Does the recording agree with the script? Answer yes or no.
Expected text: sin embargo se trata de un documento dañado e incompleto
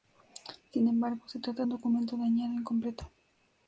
no